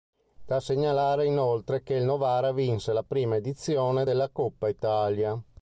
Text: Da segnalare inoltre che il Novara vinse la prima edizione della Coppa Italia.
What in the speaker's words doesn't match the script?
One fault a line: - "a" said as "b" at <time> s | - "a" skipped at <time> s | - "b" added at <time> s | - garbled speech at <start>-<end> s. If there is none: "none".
none